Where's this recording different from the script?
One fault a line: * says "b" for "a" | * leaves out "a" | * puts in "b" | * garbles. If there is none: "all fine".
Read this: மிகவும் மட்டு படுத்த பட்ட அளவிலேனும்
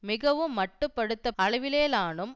* leaves out "பட்ட"